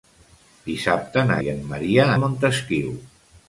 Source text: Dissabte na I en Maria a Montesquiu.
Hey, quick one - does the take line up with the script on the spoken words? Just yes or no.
yes